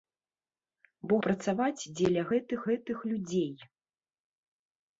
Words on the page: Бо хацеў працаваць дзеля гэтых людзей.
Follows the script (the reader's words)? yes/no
no